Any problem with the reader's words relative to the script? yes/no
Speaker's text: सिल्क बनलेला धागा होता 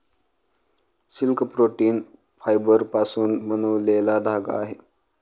yes